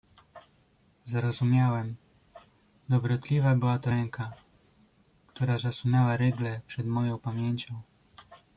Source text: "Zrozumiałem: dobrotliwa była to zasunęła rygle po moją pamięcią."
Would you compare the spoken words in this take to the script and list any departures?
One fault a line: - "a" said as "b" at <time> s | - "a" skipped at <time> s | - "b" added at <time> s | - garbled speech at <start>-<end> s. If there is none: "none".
- "ręka która" added at 3.9 s
- "po" said as "przed" at 6.7 s